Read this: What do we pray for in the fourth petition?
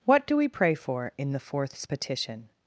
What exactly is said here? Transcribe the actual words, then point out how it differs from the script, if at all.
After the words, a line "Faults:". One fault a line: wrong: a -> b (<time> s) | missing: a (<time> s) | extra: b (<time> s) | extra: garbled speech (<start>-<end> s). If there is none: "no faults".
What do we pray for in the fourths petition?
Faults:
wrong: fourth -> fourths (1.4 s)